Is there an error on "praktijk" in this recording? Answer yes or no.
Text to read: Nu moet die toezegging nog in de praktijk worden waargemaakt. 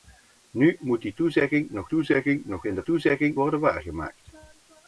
yes